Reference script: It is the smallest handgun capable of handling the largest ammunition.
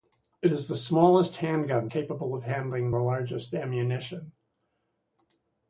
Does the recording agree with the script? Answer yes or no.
yes